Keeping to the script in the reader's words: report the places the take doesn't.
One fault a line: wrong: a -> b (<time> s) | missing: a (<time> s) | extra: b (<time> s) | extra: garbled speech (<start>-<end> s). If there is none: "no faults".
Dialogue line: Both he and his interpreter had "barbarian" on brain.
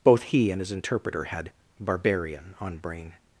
no faults